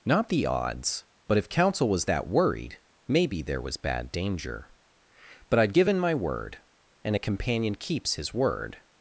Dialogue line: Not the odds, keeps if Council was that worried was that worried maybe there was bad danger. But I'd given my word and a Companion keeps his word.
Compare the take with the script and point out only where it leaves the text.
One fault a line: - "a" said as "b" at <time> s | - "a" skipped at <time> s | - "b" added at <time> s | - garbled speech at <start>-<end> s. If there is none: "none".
- "keeps" said as "but" at 1.3 s
- "was that worried" skipped at 2.8 s